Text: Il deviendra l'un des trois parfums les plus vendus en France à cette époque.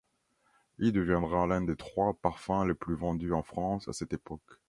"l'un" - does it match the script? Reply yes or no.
yes